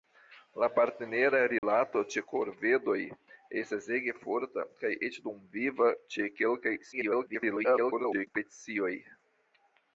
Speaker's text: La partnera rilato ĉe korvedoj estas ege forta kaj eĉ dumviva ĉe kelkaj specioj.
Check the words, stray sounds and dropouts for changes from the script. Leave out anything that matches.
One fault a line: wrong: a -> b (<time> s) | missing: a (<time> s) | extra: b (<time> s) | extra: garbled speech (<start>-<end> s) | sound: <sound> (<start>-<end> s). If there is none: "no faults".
sound: dropout (1.6-1.6 s)
extra: garbled speech (6.9-8.3 s)